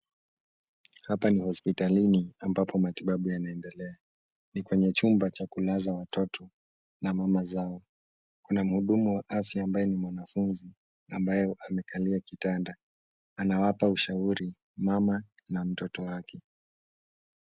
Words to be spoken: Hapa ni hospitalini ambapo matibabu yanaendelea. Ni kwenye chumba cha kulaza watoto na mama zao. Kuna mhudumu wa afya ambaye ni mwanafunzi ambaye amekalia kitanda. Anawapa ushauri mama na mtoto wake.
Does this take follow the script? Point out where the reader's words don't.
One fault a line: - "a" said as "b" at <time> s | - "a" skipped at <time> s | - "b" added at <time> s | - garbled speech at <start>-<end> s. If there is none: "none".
none